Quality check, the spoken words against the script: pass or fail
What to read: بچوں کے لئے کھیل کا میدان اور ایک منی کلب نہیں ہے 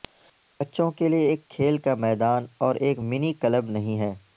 fail